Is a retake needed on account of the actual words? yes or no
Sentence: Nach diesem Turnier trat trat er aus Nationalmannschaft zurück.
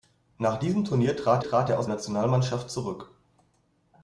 no